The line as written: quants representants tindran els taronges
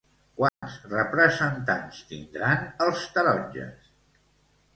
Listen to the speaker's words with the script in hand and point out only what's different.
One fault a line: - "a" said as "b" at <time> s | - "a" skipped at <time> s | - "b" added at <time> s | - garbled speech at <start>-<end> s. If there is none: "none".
none